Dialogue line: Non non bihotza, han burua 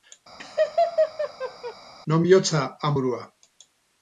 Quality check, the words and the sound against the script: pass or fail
fail